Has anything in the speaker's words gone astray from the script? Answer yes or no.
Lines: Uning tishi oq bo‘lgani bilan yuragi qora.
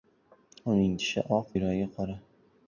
yes